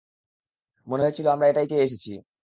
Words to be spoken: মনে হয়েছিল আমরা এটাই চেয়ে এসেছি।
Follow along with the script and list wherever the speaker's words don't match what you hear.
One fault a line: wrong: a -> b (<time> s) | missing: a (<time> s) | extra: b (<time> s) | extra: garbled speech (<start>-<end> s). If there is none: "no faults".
no faults